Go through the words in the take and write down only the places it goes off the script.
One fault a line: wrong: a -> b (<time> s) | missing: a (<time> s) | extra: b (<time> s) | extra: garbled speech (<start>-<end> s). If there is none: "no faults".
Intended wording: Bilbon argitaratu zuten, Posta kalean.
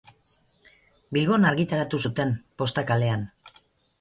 no faults